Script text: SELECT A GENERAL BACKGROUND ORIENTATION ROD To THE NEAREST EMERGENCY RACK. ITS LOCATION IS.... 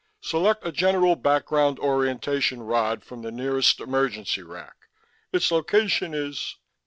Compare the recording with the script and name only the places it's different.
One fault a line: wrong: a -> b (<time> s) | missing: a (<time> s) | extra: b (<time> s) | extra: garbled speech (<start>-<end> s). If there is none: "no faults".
wrong: To -> FROM (3.0 s)